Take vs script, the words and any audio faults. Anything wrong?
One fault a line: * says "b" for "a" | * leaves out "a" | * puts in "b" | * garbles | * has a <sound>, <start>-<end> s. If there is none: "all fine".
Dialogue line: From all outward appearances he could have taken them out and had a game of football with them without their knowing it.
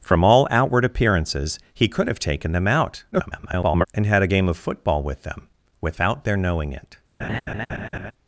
* garbles
* has a laugh, 7.2-8.1 s